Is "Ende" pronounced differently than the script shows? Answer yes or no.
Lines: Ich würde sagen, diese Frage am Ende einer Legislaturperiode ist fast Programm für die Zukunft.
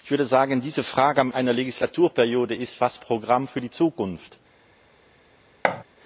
yes